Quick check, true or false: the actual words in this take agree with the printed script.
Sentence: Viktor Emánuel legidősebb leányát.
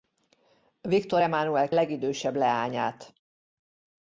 true